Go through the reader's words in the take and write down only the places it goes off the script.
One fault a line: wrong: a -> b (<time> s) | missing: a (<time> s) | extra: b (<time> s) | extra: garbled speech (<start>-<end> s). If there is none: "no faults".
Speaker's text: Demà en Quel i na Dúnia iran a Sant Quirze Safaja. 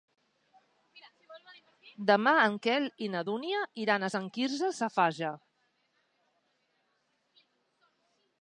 no faults